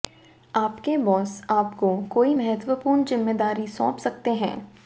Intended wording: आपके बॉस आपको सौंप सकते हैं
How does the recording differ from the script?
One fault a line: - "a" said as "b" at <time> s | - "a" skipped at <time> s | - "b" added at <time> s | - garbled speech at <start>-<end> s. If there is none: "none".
- "कोई महत्वपूर्ण जिम्मेदारी" added at 2.1 s